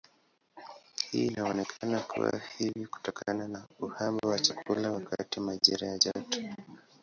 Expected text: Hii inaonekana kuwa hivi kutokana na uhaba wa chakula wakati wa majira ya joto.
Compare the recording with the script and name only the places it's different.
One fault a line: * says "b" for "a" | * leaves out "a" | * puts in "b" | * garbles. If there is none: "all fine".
all fine